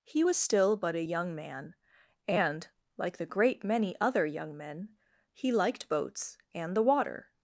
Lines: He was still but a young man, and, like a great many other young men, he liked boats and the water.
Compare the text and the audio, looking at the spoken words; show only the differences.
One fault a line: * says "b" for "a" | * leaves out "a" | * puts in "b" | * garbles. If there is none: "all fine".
* says "the" for "a"